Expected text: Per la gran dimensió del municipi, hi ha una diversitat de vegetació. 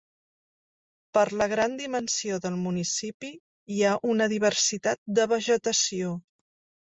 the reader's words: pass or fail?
pass